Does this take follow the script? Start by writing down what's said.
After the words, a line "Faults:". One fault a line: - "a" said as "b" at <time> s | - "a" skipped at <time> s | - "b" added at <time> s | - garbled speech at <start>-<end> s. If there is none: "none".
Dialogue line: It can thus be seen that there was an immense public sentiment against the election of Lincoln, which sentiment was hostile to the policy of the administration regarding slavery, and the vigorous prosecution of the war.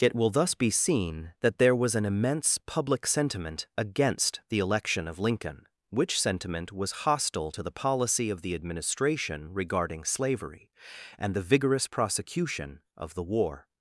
It will thus be seen that there was an immense public sentiment against the election of Lincoln, which sentiment was hostile to the policy of the administration regarding slavery, and the vigorous prosecution of the war.
Faults:
- "can" said as "will" at 0.1 s